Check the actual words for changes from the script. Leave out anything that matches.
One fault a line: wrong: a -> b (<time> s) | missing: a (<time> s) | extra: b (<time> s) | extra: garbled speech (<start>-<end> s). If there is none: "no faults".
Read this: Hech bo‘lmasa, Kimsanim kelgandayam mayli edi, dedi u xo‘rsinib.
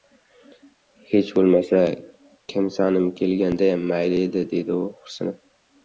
no faults